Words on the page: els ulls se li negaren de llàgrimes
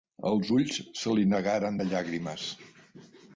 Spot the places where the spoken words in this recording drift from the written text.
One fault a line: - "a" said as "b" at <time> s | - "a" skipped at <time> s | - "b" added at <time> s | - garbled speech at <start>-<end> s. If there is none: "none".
none